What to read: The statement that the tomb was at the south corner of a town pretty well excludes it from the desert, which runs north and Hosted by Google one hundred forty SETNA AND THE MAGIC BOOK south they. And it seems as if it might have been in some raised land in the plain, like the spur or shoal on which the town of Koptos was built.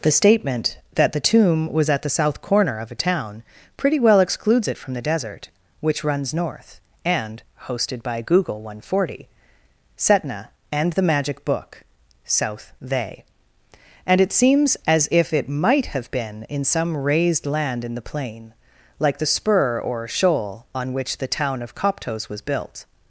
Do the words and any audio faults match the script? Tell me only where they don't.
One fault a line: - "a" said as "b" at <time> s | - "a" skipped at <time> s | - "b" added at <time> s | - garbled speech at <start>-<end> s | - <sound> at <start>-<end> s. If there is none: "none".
none